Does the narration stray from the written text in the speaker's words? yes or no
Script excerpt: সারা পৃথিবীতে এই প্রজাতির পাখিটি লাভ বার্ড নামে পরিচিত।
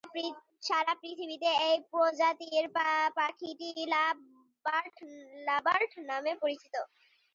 no